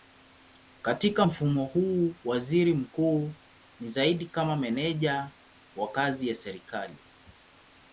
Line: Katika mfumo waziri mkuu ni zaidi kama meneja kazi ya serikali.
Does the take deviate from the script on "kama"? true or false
false